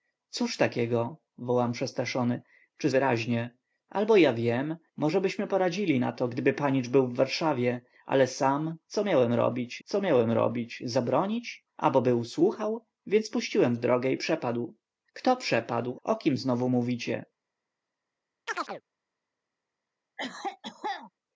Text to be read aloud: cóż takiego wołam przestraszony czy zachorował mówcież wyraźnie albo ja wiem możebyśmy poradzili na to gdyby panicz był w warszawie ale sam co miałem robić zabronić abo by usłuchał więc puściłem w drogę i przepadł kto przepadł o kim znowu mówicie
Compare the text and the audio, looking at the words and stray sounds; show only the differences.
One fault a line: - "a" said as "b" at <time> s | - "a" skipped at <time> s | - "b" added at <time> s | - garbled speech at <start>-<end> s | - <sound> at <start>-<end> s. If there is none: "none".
- "zachorował mówcież" skipped at 2.9 s
- "co miałem robić" added at 9.8 s
- chirp at 18.5-18.8 s
- cough at 20.2-21.1 s